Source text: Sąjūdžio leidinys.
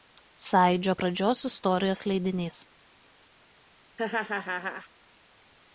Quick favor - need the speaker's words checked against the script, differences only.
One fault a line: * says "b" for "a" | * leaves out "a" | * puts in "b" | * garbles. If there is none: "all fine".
* puts in "pradžios istorijos"